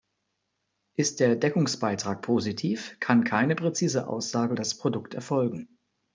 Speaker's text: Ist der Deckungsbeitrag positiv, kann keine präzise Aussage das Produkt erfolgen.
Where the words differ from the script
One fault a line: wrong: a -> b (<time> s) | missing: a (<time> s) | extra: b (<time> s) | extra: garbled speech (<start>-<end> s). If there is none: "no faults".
no faults